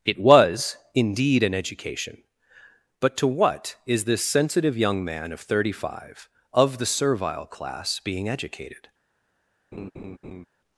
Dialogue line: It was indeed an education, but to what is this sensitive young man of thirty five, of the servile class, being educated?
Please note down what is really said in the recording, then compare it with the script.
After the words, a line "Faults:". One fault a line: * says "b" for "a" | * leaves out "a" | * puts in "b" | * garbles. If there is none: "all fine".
It was indeed an education, but to what is this sensitive young man of thirty five, of the servile class, being educated?
Faults:
all fine